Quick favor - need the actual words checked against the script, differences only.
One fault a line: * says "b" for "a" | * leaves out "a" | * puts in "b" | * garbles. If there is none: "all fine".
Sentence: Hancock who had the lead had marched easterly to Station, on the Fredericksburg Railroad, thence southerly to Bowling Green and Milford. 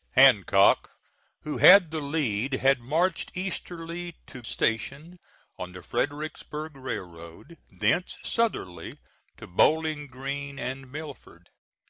all fine